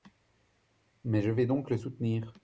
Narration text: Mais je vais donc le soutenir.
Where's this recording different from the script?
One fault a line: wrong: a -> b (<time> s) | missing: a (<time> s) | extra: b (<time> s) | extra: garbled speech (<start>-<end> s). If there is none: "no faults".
no faults